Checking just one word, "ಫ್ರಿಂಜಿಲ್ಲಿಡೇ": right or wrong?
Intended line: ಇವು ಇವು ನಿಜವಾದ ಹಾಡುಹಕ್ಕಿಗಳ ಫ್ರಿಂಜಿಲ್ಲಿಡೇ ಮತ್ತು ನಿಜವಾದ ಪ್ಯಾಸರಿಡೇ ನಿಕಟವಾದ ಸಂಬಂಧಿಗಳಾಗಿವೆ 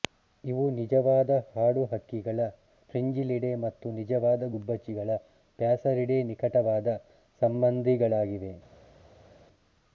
right